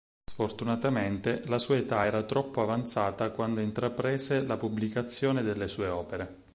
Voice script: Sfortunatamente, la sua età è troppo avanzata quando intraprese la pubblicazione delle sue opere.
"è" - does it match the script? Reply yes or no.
no